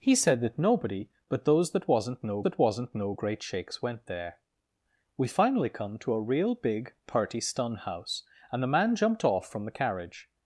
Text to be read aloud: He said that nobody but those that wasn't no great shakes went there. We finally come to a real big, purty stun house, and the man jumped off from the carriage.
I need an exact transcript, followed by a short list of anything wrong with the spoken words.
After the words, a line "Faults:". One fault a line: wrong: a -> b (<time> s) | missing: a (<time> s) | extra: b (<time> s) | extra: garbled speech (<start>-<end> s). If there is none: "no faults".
He said that nobody but those that wasn't no that wasn't no great shakes went there. We finally come to a real big, purty stun house, and the man jumped off from the carriage.
Faults:
extra: that wasn't no (2.4 s)